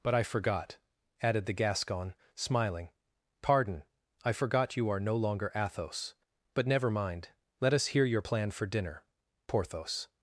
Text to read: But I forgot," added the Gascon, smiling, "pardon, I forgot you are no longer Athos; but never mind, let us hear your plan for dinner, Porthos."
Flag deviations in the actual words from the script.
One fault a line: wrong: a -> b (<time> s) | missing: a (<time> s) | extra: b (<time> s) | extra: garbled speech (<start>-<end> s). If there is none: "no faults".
no faults